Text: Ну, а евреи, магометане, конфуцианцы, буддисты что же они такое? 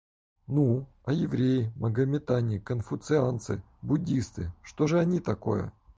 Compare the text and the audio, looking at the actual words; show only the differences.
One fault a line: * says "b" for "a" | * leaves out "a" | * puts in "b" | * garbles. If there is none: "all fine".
all fine